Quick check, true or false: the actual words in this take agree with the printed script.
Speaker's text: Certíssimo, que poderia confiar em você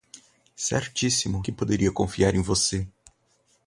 true